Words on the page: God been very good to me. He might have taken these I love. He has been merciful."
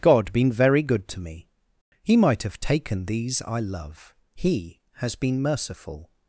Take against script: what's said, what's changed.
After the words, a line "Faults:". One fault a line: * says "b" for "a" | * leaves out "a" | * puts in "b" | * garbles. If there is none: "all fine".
God been very good to me. He might have taken these I love. He has been merciful."
Faults:
all fine